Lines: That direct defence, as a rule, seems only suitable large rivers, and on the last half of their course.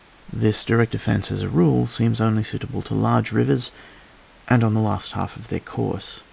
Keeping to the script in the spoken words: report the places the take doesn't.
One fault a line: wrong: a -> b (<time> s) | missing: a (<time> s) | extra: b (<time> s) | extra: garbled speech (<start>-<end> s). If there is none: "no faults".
wrong: That -> This (0.3 s)
extra: to (2.8 s)